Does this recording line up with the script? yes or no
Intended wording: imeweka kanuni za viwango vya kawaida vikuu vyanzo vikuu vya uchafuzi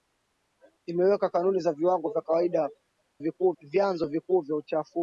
yes